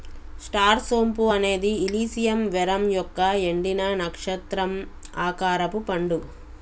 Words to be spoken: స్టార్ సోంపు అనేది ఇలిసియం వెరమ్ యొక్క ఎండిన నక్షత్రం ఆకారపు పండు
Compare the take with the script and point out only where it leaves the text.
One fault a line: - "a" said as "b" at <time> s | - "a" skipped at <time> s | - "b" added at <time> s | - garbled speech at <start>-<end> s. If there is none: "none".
none